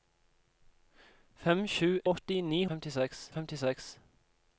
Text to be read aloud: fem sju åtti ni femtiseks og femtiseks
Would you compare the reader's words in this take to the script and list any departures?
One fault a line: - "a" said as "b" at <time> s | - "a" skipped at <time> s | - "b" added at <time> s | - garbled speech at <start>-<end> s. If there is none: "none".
none